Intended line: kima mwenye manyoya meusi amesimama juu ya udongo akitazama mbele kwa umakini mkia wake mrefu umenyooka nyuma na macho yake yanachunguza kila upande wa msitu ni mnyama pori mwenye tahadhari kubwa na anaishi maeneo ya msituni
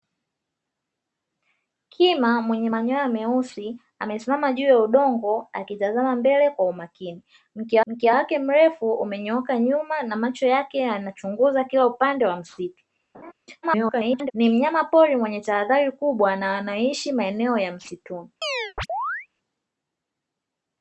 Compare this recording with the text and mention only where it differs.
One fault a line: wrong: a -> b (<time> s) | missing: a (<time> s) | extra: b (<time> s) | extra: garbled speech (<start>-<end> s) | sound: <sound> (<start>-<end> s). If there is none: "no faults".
extra: mkia (7.9 s)
sound: laugh (13.1-13.3 s)
extra: garbled speech (13.6-14.3 s)
sound: chirp (18.4-19.3 s)